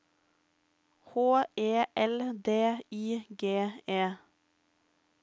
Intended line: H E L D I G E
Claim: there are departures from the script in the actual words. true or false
false